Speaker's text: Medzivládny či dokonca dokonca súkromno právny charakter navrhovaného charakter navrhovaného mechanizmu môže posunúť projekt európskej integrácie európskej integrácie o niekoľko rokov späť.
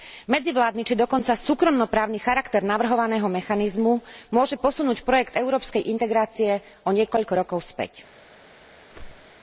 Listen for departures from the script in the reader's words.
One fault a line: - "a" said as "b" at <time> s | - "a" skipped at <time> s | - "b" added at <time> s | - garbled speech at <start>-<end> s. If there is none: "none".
- "dokonca" skipped at 1.3 s
- "charakter navrhovaného" skipped at 3.2 s
- "európskej integrácie" skipped at 6.6 s